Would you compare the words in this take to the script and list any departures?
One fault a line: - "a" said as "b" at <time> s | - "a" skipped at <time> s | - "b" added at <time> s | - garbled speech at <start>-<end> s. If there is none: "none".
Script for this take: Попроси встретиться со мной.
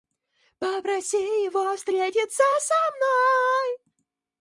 - "его" added at 1.2 s